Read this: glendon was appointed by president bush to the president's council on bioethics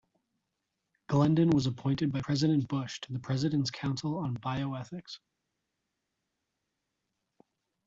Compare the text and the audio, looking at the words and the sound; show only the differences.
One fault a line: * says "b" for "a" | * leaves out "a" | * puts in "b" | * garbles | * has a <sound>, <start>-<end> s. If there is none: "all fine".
all fine